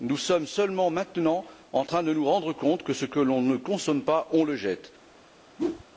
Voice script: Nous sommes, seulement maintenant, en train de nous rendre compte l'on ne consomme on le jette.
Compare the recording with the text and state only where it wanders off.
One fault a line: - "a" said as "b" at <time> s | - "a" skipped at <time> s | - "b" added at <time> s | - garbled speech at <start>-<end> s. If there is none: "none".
- "que ce que" added at 2.8 s
- "pas" added at 4.0 s